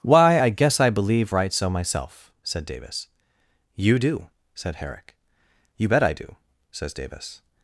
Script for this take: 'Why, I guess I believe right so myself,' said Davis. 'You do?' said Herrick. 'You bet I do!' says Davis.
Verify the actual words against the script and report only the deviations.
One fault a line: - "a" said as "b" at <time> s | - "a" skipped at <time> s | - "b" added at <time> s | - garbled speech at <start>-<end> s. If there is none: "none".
none